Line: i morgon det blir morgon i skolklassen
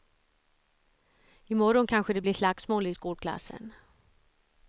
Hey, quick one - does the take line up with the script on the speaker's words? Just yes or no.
no